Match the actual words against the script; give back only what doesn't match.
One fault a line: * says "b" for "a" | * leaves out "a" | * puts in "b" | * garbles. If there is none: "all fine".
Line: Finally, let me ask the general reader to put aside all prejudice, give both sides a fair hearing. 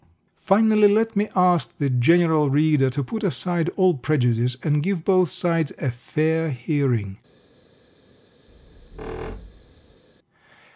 * puts in "and"